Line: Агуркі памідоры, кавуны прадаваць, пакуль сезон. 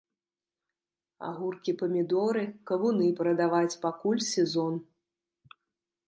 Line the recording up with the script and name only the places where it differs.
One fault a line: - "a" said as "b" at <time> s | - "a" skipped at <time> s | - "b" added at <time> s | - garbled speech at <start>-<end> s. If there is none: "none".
none